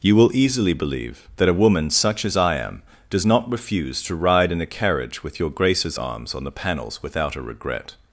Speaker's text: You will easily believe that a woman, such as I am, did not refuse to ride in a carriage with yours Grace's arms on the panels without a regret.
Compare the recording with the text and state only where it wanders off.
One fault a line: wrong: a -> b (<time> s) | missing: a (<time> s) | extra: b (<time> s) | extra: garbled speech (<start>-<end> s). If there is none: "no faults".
wrong: did -> does (3.1 s)
wrong: yours -> your (5.4 s)